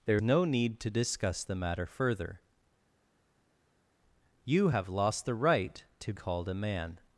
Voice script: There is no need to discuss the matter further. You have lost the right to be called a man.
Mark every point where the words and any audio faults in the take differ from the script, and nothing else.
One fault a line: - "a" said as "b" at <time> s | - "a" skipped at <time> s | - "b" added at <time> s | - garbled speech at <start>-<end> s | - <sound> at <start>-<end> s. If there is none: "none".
- "is" skipped at 0.2 s
- "be" skipped at 6.1 s